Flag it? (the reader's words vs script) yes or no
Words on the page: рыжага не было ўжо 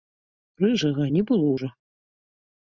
no